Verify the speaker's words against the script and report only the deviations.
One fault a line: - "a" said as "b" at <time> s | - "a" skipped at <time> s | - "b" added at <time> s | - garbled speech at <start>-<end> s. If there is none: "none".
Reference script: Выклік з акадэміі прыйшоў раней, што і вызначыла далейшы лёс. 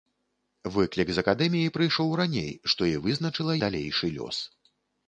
none